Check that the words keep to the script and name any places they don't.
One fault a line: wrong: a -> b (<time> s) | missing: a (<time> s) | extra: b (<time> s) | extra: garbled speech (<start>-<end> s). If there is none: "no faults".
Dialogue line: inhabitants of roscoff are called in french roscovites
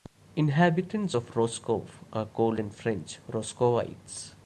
no faults